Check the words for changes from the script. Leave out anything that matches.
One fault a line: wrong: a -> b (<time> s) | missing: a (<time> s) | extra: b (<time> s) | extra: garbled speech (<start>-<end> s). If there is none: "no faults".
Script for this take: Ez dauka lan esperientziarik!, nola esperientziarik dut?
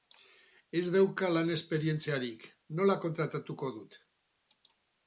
wrong: esperientziarik -> kontratatuko (3.1 s)